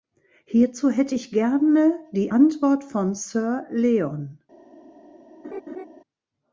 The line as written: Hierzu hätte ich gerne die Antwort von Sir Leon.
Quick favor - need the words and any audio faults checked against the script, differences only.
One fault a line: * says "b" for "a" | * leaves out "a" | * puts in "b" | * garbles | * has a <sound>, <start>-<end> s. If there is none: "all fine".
* has a laugh, 5.4-5.9 s